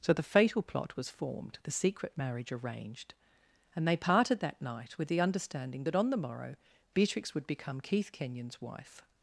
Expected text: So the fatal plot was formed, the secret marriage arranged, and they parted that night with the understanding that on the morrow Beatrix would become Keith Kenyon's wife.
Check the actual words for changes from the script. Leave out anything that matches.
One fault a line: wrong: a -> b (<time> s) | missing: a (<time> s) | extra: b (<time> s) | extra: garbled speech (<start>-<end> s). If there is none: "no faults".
no faults